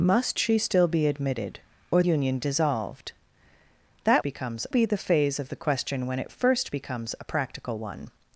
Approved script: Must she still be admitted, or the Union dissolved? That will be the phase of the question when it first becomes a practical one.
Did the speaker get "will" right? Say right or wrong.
wrong